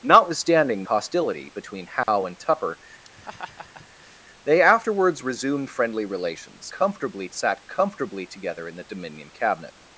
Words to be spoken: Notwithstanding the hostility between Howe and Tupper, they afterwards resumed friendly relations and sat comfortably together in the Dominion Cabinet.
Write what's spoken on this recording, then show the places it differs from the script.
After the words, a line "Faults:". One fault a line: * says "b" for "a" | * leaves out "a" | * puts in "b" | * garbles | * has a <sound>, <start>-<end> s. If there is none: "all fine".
Notwithstanding hostility between Howe and Tupper, they afterwards resumed friendly relations comfortably sat comfortably together in the Dominion Cabinet.
Faults:
* leaves out "the"
* has a dropout, 2.0-2.1 s
* has a laugh, 3.0-4.2 s
* says "comfortably" for "and"